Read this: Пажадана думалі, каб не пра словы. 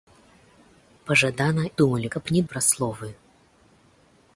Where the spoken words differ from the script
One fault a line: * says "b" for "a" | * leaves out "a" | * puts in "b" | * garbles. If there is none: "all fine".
all fine